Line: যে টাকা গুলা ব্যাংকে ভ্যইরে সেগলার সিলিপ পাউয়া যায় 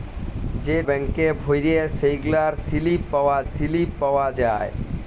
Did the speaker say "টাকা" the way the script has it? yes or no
no